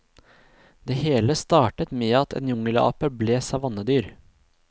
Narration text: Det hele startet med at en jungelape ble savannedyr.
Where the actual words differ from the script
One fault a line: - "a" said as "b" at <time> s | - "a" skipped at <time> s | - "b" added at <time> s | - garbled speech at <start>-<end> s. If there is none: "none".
none